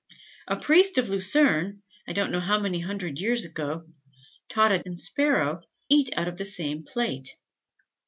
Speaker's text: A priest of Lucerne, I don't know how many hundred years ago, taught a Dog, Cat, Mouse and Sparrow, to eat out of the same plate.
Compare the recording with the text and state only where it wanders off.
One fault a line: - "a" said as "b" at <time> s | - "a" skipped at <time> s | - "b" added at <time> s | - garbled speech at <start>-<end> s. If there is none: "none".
- "Dog Cat Mouse" skipped at 4.8 s
- "to" skipped at 5.6 s